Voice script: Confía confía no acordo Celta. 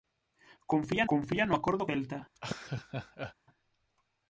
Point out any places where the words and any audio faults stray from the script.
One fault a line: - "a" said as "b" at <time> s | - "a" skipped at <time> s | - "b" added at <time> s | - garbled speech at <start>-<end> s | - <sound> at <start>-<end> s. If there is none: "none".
- laugh at 2.3-3.3 s